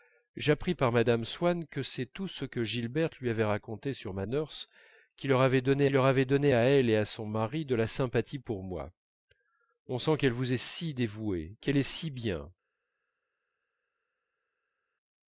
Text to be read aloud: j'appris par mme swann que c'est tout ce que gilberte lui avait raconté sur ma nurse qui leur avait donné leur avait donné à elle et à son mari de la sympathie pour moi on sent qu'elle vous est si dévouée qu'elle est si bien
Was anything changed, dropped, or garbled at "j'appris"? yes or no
no